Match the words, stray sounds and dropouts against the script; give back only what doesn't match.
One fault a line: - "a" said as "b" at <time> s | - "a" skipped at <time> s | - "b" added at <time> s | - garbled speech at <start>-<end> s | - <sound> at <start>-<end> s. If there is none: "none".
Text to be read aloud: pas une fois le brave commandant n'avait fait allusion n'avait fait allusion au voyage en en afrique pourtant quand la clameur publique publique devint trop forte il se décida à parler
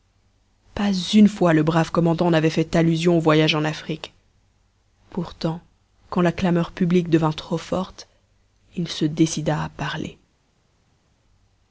- "n'avait fait allusion" skipped at 3.2 s
- "en" skipped at 3.6 s
- "publique" skipped at 7.1 s